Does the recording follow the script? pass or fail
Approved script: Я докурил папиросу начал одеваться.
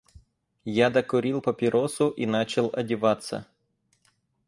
fail